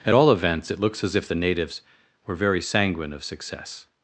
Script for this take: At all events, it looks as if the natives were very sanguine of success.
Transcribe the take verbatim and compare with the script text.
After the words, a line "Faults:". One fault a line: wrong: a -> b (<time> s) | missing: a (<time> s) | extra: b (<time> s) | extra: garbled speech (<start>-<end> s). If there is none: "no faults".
At all events, it looks as if the natives were very sanguine of success.
Faults:
no faults